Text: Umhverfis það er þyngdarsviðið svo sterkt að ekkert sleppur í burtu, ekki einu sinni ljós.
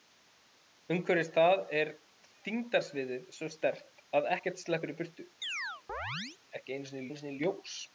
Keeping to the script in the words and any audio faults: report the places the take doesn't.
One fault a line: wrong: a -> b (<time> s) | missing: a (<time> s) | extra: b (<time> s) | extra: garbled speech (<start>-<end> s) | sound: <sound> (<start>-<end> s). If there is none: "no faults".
sound: chirp (5.4-6.4 s)
extra: einu sinni (7.1 s)